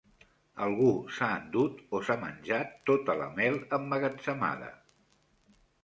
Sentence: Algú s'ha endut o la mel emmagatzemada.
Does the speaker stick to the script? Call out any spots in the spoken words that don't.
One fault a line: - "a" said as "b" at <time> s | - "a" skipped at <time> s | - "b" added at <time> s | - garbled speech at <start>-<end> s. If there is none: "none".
- "s'ha menjat tota" added at 2.1 s